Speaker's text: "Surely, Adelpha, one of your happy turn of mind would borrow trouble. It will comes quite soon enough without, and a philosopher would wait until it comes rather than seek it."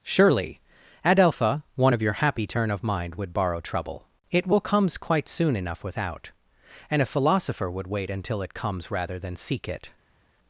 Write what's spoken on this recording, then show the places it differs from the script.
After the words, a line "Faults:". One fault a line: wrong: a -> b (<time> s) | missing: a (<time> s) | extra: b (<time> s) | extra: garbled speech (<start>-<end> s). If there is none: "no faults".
"Surely, Adelpha, one of your happy turn of mind would borrow trouble. It will comes quite soon enough without, and a philosopher would wait until it comes rather than seek it."
Faults:
no faults